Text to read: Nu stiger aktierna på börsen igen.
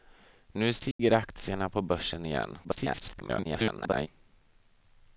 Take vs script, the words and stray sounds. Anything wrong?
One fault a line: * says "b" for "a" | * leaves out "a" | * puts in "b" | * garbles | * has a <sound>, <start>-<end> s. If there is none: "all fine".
* has a dropout, 0.9-1.0 s
* garbles